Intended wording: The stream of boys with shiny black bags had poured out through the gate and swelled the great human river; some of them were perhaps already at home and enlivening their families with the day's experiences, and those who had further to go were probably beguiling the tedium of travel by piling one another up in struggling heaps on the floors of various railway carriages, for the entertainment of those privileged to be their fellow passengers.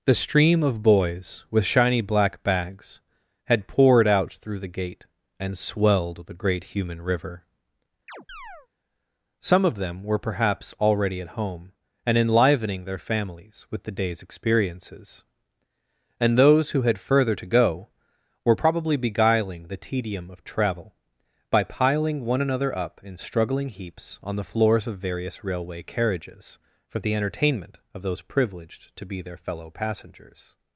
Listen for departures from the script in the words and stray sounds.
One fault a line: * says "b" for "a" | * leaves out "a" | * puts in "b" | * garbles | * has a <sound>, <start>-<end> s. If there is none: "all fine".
* has a chirp, 8.1-8.7 s